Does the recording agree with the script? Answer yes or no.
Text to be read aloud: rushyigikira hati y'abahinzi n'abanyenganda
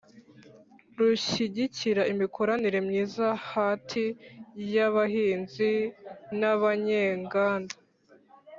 no